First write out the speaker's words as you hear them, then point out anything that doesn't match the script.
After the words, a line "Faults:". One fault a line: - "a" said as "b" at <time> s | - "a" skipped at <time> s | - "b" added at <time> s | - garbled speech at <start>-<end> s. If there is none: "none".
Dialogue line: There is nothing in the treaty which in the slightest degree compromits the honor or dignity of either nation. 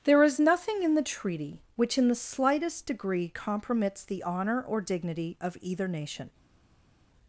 There is nothing in the treaty which in the slightest degree compromits the honor or dignity of either nation.
Faults:
none